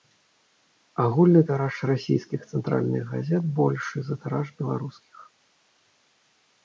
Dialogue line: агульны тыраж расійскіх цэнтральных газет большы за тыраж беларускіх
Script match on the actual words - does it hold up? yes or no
yes